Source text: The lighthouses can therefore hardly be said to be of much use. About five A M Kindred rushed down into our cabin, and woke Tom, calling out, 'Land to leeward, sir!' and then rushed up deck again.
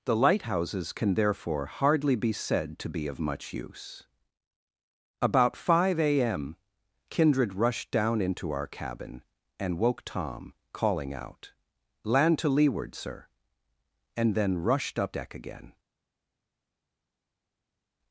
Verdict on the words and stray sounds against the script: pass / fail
pass